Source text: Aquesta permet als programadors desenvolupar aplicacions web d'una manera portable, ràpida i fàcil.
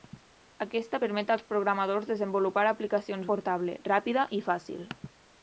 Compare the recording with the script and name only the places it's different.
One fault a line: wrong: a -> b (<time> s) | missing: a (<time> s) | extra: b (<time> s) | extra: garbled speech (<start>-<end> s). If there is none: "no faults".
missing: web d'una manera (3.3 s)